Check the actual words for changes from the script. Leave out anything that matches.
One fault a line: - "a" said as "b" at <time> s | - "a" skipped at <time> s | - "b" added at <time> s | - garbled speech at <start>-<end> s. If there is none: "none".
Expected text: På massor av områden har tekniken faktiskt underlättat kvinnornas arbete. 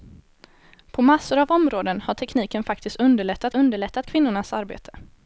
- "underlättat" added at 3.5 s